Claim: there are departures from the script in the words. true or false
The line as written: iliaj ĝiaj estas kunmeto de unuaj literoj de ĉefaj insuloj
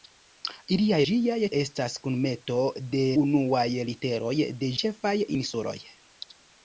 false